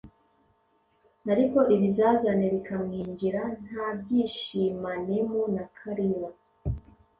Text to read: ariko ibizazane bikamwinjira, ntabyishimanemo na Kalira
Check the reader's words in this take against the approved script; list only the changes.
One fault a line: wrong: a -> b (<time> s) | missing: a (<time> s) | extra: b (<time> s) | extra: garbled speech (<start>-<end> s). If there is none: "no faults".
no faults